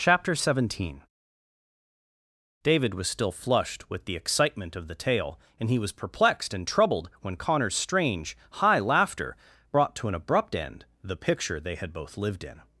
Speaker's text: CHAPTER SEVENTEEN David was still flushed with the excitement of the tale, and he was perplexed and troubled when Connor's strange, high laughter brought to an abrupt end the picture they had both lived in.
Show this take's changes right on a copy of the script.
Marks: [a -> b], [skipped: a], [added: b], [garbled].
CHAPTER SEVENTEEN David was still flushed with the excitement of the tale, and he was perplexed and troubled when Connor's strange, high laughter brought to an abrupt end the picture they had both lived in.